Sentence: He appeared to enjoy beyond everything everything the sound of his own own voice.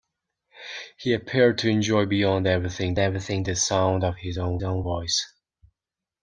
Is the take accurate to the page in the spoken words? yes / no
yes